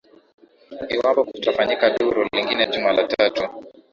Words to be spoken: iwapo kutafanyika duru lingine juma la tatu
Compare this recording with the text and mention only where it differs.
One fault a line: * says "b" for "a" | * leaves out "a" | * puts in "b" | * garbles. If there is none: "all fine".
all fine